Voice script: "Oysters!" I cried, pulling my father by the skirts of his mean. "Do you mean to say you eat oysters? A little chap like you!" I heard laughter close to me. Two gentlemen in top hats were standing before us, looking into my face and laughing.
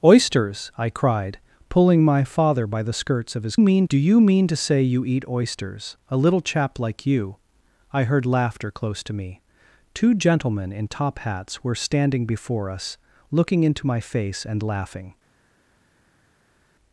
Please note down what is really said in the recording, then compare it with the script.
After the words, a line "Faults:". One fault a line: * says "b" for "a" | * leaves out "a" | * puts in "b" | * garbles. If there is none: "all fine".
"Oysters!" I cried, pulling my father by the skirts of his mean. "Do you mean to say you eat oysters? A little chap like you!" I heard laughter close to me. Two gentlemen in top hats were standing before us, looking into my face and laughing.
Faults:
all fine